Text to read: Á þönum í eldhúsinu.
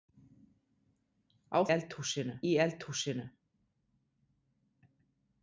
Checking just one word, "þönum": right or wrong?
wrong